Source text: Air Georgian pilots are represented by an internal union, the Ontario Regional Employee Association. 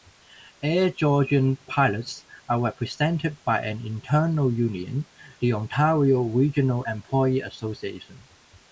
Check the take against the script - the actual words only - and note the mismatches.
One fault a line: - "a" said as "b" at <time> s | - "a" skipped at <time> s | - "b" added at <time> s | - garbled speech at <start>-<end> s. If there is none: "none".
none